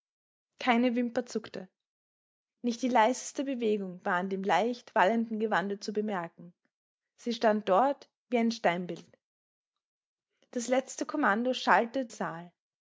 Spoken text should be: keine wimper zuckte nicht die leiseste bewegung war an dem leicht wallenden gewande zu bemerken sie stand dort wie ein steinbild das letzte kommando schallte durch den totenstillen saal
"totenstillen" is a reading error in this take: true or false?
true